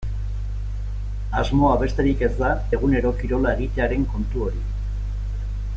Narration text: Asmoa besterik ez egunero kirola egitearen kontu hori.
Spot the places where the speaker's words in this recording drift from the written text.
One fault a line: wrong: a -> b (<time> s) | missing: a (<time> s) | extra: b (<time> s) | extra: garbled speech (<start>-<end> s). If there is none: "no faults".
extra: da (2.4 s)